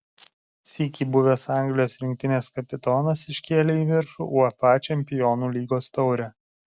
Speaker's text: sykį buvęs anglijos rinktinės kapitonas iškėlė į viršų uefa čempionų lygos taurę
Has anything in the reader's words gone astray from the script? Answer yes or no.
no